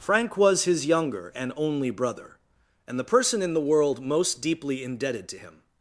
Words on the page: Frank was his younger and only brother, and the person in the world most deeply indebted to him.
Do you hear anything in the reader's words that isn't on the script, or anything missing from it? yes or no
no